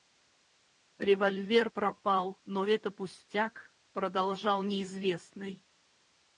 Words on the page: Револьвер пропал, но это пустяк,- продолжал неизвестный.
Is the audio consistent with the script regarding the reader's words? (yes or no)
yes